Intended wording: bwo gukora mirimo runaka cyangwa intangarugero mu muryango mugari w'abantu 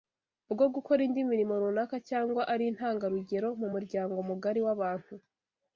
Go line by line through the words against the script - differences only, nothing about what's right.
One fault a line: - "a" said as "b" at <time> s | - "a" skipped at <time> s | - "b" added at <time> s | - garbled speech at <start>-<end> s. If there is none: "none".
- "indi" added at 1.1 s
- "ari" added at 2.5 s